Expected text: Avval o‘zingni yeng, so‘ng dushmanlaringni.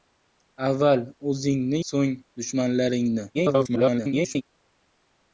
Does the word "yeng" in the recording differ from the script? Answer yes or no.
yes